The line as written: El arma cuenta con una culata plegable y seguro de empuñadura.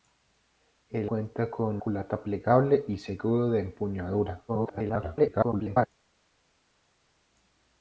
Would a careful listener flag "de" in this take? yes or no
no